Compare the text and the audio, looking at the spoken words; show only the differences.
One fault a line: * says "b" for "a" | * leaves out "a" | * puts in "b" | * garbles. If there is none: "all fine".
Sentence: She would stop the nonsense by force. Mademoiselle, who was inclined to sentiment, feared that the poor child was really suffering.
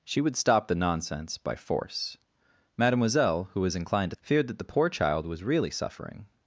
* leaves out "sentiment"